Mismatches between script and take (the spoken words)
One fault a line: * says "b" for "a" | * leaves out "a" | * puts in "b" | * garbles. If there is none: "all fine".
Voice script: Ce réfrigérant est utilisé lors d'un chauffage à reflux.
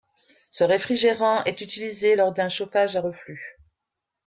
all fine